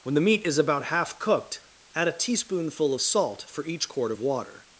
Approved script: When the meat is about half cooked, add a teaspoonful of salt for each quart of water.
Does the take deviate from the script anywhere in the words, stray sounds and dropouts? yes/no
no